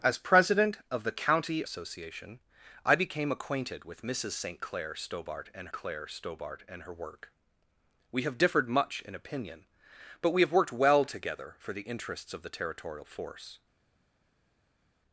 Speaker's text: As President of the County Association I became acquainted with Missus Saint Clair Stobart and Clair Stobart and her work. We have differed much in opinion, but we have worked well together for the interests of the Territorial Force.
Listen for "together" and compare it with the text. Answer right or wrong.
right